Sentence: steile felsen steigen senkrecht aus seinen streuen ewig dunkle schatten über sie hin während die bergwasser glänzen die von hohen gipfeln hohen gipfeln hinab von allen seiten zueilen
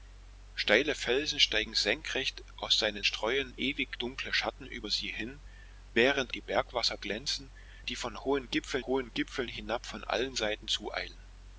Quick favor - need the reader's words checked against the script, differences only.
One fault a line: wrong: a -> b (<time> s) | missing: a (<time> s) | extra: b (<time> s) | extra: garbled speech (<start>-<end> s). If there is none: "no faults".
no faults